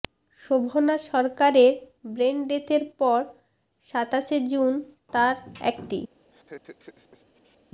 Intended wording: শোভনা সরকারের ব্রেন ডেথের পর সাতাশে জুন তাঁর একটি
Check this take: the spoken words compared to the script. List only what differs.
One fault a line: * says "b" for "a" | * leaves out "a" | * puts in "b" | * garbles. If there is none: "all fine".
all fine